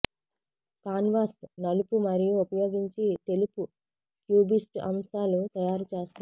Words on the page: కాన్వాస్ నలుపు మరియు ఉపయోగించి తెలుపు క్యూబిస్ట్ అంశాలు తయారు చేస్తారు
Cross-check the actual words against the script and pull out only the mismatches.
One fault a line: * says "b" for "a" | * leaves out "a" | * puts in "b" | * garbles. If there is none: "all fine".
all fine